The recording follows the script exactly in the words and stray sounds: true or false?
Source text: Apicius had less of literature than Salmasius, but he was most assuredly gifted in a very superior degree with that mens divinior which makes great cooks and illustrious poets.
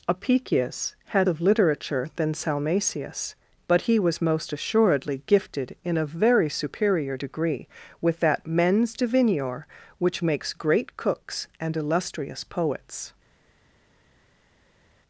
false